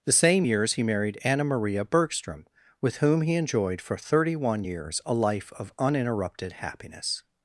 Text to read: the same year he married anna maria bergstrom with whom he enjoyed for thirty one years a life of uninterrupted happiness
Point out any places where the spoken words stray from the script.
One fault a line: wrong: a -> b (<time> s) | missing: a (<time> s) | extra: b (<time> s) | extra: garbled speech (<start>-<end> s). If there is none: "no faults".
wrong: year -> years (0.4 s)